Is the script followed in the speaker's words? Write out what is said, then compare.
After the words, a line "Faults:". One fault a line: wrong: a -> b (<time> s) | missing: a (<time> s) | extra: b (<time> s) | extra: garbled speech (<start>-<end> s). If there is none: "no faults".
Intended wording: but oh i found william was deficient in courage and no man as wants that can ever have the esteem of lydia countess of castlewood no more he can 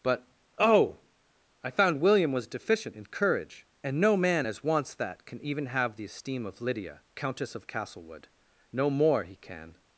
but oh i found william was deficient in courage and no man as wants that can even have the esteem of lydia countess of castlewood no more he can
Faults:
wrong: ever -> even (5.4 s)